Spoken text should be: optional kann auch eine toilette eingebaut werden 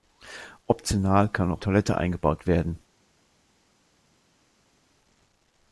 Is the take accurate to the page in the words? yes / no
no